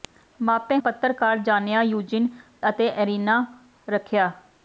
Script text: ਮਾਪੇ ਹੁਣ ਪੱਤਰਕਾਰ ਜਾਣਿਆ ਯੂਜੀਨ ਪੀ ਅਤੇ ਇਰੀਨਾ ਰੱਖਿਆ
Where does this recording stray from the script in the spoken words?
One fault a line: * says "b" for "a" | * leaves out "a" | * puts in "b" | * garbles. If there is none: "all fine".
* leaves out "ਹੁਣ"
* leaves out "ਪੀ"